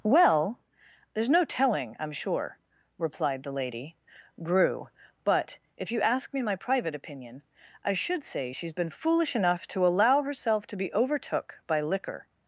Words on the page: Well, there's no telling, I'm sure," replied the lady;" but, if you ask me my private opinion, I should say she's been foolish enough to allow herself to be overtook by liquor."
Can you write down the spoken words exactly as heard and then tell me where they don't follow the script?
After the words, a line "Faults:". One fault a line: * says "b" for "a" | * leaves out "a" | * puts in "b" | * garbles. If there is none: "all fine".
Well, there's no telling, I'm sure," replied the lady;" grew but, if you ask me my private opinion, I should say she's been foolish enough to allow herself to be overtook by liquor."
Faults:
* puts in "grew"